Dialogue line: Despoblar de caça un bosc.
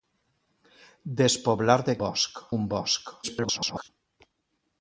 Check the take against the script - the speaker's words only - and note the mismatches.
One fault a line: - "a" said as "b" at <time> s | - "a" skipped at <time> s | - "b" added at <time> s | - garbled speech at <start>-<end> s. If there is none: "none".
- "caça" said as "bosc" at 2.0 s
- garbled speech at 3.2-3.9 s